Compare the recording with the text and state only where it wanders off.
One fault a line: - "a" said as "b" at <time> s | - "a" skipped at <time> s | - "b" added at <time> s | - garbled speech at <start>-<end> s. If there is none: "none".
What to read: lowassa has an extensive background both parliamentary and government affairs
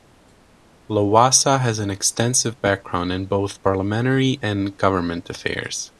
- "in" added at 3.1 s